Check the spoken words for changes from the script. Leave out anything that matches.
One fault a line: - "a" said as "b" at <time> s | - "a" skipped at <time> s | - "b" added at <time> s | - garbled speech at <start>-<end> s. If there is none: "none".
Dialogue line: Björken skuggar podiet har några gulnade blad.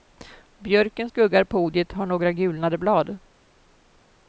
none